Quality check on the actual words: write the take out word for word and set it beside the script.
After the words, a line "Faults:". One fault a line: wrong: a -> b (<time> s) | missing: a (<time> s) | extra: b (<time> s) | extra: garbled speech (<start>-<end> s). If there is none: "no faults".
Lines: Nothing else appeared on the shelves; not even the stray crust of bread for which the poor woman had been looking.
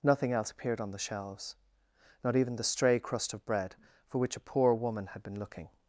Nothing else appeared on the shelves; not even the stray crust of bread for which a poor woman had been looking.
Faults:
wrong: the -> a (4.4 s)